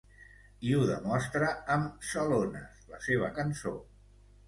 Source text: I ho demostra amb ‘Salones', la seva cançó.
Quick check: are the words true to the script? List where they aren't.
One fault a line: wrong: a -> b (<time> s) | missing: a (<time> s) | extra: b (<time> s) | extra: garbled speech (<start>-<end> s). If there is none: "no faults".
no faults